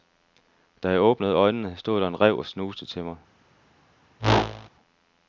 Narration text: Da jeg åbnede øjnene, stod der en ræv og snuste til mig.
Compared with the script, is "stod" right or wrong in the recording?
right